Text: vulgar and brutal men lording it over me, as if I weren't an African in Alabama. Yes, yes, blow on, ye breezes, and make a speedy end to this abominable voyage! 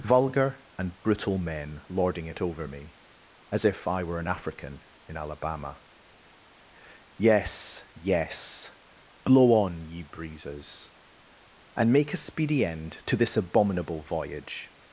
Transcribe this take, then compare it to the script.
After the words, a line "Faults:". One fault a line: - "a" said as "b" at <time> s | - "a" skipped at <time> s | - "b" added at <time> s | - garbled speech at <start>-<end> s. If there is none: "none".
vulgar and brutal men lording it over me, as if I were an African in Alabama. Yes, yes, blow on, ye breezes, and make a speedy end to this abominable voyage!
Faults:
- "weren't" said as "were" at 4.0 s